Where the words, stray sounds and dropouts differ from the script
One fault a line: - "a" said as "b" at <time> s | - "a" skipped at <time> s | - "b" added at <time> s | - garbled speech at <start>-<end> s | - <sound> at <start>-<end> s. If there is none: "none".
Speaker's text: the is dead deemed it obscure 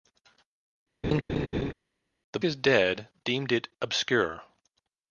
- laugh at 1.0-1.7 s